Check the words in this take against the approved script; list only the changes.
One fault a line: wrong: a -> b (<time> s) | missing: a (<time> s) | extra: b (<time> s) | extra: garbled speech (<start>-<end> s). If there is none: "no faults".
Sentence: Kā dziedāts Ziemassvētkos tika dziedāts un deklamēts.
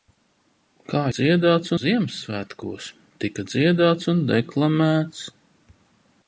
no faults